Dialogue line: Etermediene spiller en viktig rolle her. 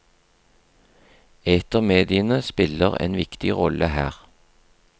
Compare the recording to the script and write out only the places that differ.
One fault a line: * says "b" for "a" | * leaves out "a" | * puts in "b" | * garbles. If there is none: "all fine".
all fine